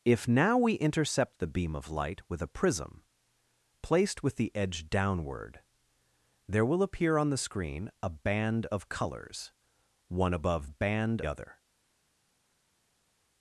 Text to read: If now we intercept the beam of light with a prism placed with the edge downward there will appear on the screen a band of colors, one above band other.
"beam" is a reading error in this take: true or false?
false